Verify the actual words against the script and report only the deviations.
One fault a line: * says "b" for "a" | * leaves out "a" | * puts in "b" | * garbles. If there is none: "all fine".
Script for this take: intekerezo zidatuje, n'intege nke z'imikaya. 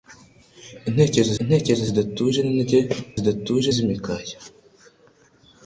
* puts in "intekerezo"
* says "zidatuje" for "nke"